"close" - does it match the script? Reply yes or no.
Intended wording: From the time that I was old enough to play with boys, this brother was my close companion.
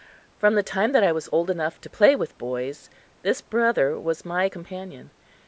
no